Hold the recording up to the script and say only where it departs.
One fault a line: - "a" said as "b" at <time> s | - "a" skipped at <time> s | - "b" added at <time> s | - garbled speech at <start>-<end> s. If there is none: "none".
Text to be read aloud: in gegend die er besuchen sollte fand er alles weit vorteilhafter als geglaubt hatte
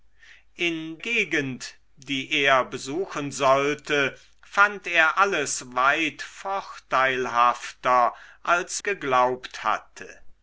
none